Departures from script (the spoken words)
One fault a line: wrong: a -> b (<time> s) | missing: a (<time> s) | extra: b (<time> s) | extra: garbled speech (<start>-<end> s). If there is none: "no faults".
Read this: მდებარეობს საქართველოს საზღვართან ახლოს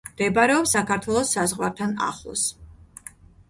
no faults